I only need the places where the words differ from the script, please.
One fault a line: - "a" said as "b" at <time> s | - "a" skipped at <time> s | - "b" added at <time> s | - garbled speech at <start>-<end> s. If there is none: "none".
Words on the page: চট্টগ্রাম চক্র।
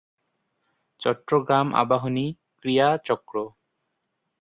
- "আবাহনী ক্রীড়া" added at 1.8 s